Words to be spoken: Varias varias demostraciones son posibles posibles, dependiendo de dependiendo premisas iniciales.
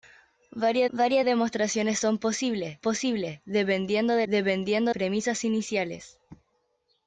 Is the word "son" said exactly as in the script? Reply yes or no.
yes